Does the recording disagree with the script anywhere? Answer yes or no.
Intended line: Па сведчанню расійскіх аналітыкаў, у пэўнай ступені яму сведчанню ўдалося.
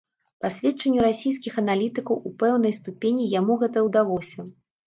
yes